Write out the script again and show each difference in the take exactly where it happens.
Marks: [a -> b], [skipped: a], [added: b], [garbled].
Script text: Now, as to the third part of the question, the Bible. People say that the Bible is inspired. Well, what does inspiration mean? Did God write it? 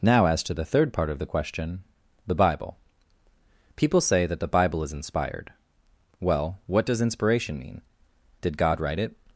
Now, as to the third part of the question, the Bible. People say that the Bible is inspired. Well, what does inspiration mean? Did God write it?